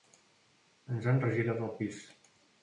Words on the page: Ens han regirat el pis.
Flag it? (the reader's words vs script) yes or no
no